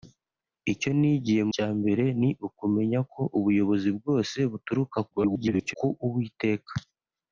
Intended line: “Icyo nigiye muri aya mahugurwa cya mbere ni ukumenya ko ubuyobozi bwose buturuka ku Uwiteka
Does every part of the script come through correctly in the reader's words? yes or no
no